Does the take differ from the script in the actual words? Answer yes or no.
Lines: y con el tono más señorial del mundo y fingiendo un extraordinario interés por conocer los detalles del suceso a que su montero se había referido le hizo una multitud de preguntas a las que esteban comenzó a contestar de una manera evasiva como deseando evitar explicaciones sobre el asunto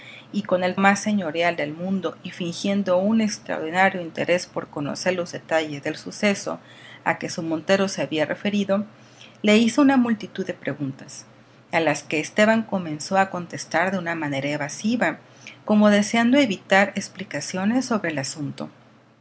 yes